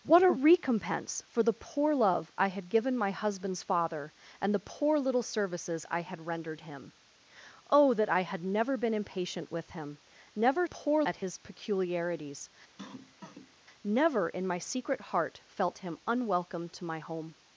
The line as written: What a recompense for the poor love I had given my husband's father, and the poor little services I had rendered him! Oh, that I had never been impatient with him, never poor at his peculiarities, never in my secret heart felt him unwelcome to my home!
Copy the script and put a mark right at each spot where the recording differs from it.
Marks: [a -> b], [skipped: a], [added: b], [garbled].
What a recompense for the poor love I had given my husband's father, and the poor little services I had rendered him! Oh, that I had never been impatient with him, never poor at his peculiarities, never in my secret heart felt him unwelcome to my home!